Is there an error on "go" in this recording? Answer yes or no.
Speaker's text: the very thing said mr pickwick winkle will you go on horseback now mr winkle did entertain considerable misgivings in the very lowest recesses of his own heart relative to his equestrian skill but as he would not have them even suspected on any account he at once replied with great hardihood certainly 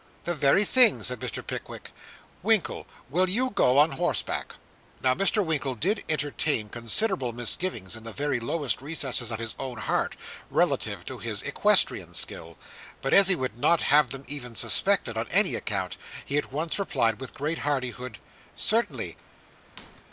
no